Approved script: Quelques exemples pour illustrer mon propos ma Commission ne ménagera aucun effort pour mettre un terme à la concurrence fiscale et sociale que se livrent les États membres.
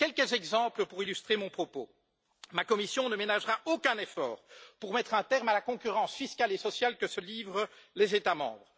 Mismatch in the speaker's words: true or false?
false